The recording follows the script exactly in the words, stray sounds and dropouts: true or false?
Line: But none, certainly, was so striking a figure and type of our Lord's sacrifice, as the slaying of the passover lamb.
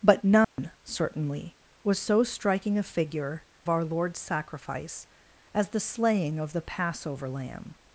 false